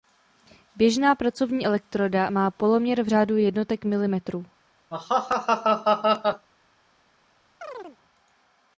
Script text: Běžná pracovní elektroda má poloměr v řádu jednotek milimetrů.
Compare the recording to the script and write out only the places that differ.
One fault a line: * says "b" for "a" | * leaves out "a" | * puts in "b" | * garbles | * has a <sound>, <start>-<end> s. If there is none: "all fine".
* has a laugh, 4.9-6.5 s
* has a chirp, 7.6-8.0 s